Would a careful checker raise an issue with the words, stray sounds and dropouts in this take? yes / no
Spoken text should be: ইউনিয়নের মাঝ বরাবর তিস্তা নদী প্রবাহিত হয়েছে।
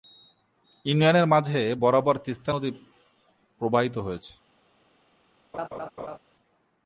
yes